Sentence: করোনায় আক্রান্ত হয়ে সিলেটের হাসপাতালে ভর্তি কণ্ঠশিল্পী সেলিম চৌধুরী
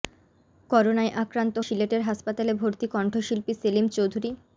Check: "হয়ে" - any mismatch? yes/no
yes